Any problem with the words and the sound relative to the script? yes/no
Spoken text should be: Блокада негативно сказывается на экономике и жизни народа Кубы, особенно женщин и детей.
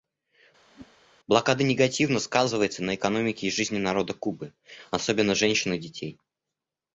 yes